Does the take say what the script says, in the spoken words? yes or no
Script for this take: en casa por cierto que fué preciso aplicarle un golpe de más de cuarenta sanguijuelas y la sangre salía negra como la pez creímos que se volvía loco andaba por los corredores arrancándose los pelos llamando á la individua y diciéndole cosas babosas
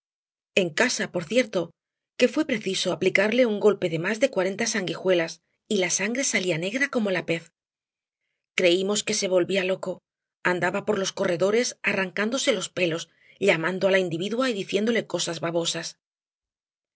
yes